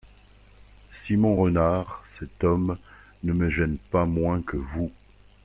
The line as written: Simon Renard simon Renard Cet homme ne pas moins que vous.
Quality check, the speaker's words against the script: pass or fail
fail